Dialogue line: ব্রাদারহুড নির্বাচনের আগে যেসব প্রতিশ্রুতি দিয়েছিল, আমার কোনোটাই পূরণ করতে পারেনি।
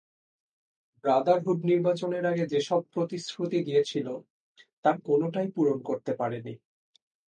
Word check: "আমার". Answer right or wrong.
wrong